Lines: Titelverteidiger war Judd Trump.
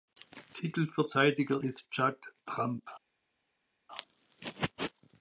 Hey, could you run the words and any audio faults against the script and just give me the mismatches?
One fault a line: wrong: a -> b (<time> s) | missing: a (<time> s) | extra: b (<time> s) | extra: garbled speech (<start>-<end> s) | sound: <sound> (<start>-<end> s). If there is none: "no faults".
wrong: war -> ist (1.6 s)